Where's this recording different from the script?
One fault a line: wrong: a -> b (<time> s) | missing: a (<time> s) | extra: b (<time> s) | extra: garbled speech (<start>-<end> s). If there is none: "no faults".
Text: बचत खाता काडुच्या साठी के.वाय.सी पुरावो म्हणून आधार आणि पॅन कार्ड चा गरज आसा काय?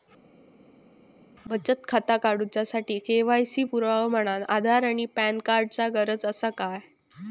no faults